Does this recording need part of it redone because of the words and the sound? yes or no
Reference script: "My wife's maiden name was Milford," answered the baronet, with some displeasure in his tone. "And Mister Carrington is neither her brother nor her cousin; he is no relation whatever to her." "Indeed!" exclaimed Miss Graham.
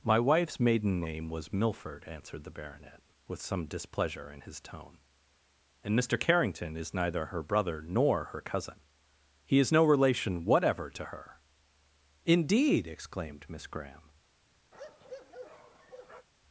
yes